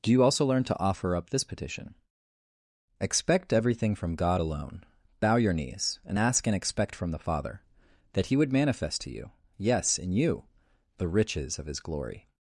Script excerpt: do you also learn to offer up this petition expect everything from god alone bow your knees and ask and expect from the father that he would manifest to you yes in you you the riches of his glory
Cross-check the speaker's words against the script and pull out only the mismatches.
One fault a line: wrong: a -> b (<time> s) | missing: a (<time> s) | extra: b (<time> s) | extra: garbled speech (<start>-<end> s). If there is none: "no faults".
missing: you (10.4 s)